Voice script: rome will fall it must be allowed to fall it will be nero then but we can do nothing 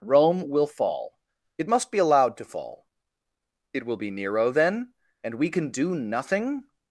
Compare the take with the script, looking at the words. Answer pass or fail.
fail